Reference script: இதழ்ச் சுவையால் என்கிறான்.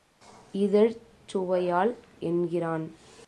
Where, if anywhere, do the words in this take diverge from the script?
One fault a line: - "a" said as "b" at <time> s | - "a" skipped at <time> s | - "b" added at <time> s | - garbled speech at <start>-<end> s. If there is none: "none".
none